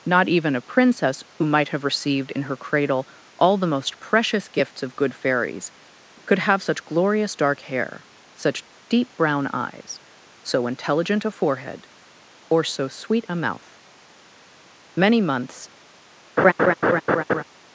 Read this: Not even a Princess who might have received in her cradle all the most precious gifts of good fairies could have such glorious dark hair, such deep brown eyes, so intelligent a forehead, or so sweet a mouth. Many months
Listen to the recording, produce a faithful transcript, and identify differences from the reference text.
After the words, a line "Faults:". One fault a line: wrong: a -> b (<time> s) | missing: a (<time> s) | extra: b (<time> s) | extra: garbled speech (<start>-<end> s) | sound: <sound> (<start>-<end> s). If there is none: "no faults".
Not even a Princess who might have received in her cradle all the most precious gifts of good fairies could have such glorious dark hair, such deep brown eyes, so intelligent a forehead, or so sweet a mouth. Many months
Faults:
sound: laugh (16.4-17.4 s)